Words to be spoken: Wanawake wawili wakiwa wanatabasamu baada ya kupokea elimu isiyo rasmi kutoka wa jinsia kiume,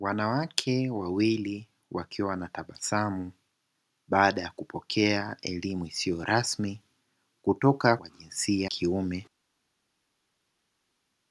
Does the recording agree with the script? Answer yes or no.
yes